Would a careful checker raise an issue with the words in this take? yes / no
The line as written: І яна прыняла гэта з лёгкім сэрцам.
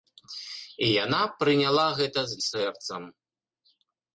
yes